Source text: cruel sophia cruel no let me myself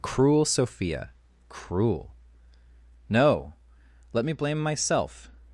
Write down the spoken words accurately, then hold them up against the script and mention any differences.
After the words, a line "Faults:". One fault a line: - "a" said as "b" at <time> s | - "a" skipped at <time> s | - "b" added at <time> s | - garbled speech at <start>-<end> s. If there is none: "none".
cruel sophia cruel no let me blame myself
Faults:
- "blame" added at 4.3 s